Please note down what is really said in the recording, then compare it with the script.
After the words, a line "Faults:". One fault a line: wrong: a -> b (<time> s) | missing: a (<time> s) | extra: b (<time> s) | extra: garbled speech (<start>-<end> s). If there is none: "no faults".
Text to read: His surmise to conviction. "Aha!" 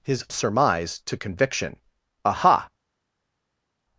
His surmise to conviction. "Aha!"
Faults:
no faults